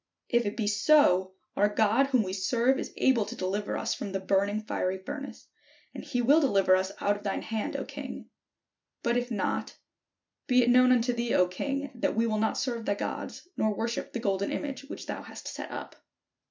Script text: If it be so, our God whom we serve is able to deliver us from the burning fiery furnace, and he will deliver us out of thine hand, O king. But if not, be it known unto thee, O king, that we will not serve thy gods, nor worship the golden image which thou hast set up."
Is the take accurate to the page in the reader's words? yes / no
yes